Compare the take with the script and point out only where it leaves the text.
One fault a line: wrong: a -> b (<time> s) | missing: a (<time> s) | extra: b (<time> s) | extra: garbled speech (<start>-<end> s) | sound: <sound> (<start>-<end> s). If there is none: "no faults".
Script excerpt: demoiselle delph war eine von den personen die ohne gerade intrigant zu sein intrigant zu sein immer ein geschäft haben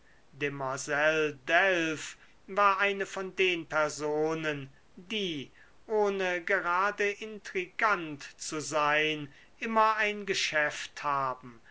missing: intrigant zu sein (9.3 s)